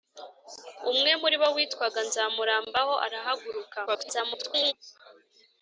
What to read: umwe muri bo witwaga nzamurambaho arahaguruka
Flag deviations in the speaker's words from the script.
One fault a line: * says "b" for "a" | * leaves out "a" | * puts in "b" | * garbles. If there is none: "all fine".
* garbles